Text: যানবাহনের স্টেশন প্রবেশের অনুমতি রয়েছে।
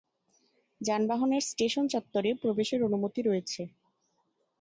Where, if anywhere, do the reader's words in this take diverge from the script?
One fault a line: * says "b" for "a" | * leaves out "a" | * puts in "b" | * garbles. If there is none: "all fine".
* puts in "চত্বরে"